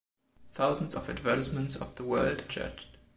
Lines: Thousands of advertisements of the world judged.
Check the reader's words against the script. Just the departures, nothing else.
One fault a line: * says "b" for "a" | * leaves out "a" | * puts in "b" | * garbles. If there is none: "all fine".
all fine